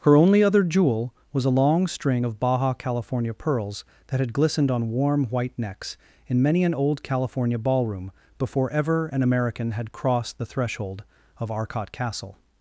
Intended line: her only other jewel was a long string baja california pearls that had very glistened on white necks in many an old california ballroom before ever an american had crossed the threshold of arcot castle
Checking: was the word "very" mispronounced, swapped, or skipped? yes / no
yes